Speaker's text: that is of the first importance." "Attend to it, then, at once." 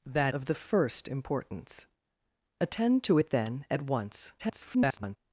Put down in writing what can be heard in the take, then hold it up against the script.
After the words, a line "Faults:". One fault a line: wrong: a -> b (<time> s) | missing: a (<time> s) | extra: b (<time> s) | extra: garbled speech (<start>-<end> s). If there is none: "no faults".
that of the first importance." "Attend to it, then, at once." [garbled]
Faults:
missing: is (0.3 s)
extra: garbled speech (4.4-5.2 s)